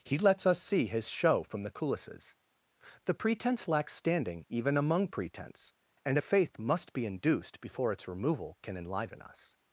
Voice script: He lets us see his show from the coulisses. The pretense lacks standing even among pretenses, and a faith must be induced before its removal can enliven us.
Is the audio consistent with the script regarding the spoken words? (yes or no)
no